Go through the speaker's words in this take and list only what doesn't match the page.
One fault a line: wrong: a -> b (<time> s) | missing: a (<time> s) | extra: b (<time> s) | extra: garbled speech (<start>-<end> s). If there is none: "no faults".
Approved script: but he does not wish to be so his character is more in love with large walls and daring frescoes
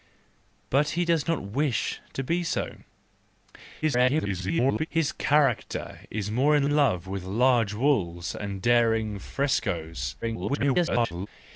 extra: garbled speech (3.8-4.9 s)
extra: in (6.6 s)
extra: garbled speech (10.2-11.3 s)